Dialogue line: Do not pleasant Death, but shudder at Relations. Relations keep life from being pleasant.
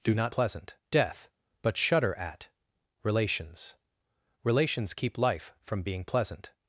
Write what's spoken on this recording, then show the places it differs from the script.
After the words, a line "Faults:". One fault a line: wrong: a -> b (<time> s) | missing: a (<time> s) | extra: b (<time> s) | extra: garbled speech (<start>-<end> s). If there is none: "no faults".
Do not pleasant Death, but shudder at Relations. Relations keep life from being pleasant.
Faults:
no faults